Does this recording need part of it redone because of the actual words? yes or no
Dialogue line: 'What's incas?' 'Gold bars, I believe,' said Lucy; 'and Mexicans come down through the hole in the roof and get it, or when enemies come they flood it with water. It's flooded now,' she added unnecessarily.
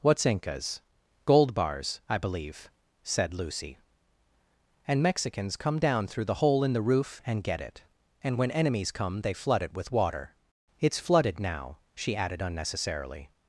yes